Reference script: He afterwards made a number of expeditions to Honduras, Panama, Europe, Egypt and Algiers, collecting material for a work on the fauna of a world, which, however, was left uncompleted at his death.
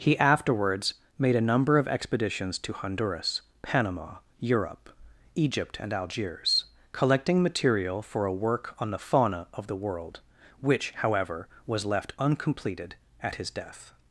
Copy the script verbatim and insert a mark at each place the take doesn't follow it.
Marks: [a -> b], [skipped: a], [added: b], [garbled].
He afterwards made a number of expeditions to Honduras, Panama, Europe, Egypt and Algiers, collecting material for a work on the fauna of [a -> the] world, which, however, was left uncompleted at his death.